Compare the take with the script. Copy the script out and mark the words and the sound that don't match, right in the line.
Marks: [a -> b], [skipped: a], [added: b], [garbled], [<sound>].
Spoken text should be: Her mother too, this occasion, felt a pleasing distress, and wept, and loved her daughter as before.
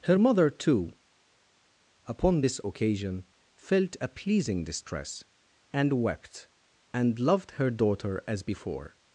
Her mother too, [added: upon] this occasion, felt a pleasing distress, and wept, and loved her daughter as before.